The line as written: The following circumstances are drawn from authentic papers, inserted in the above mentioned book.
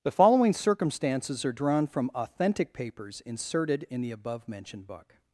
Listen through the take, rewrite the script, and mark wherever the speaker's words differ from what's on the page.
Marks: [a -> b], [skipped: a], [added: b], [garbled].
The following circumstances are drawn from authentic papers, inserted in the above mentioned book.